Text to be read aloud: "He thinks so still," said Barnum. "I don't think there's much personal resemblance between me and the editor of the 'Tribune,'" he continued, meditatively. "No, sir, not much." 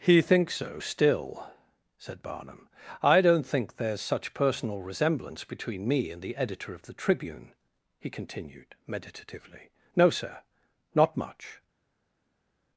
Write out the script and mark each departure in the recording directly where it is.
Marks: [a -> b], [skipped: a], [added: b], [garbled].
"He thinks so still," said Barnum. "I don't think there's [much -> such] personal resemblance between me and the editor of the 'Tribune,'" he continued, meditatively. "No, sir, not much."